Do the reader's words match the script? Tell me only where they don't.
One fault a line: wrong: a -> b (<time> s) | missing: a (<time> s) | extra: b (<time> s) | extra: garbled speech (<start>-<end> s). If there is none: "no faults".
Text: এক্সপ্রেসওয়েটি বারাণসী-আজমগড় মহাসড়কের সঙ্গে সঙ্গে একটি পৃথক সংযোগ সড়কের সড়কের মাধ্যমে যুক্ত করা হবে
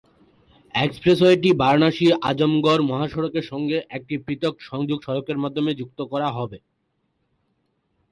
missing: সঙ্গে (3.8 s)
missing: সড়কের (5.4 s)